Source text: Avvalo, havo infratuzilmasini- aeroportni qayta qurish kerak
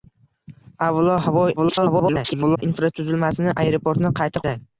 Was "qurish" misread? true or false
true